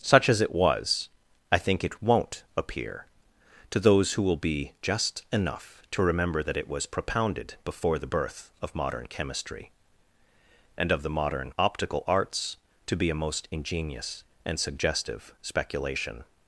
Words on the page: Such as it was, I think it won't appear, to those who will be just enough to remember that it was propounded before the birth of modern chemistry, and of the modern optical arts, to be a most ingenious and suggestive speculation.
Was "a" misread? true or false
false